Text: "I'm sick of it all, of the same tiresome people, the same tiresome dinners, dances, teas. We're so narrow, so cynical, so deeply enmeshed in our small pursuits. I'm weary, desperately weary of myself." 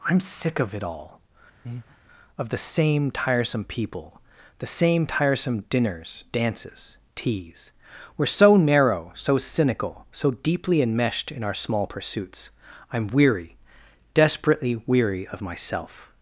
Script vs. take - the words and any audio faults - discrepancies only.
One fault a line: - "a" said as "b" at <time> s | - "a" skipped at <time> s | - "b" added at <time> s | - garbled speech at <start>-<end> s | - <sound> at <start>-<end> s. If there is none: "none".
- breath at 1.6-2.0 s